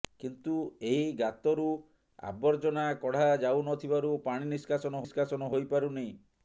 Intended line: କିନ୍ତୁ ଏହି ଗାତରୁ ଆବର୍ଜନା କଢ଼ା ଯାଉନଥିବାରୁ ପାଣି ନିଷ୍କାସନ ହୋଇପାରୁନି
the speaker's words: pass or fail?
fail